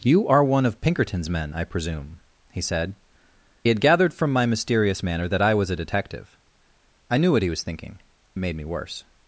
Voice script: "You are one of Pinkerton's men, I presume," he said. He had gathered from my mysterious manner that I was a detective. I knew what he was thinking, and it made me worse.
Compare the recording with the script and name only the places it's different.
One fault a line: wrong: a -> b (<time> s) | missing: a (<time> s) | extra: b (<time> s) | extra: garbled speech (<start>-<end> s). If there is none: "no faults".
missing: He (2.9 s)
missing: and (8.0 s)